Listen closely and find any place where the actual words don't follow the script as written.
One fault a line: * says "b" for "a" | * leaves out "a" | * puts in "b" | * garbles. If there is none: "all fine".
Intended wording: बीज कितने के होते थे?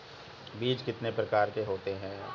* puts in "प्रकार"
* says "हैं" for "थे"